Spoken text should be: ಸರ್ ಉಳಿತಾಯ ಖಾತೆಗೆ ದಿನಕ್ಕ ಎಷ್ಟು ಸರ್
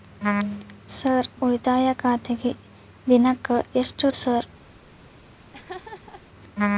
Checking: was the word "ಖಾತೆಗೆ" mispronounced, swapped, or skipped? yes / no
no